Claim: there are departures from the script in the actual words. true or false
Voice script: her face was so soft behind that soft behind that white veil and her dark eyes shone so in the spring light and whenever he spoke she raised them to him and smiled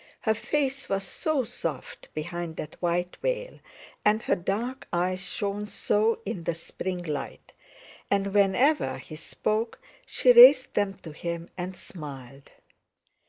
true